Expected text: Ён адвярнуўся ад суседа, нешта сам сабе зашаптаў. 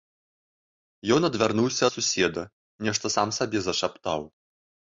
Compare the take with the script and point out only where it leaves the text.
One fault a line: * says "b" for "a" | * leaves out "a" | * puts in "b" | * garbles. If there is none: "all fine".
all fine